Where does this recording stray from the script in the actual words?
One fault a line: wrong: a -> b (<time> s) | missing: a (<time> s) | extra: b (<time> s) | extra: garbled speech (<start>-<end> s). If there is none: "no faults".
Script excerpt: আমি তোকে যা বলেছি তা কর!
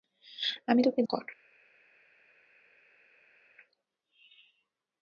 missing: যা বলেছি তা (1.0 s)